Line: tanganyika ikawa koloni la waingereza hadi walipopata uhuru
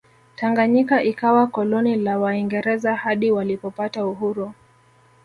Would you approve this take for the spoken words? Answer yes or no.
yes